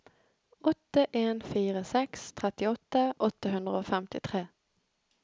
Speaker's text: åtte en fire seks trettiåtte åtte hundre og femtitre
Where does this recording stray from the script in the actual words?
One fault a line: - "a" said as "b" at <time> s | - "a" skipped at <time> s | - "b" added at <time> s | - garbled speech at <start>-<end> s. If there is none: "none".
none